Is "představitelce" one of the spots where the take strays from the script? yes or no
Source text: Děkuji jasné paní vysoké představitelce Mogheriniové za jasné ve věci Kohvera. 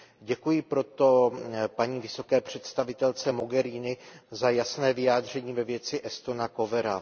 no